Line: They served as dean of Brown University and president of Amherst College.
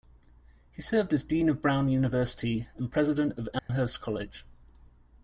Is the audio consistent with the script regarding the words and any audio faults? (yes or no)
no